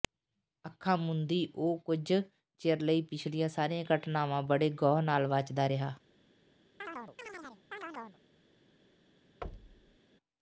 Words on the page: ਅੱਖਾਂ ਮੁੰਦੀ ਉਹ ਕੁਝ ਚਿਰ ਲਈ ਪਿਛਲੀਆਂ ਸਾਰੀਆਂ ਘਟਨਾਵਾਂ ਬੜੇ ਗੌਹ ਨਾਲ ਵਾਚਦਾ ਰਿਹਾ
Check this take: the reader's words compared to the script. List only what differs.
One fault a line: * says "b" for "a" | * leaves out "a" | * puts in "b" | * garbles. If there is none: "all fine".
all fine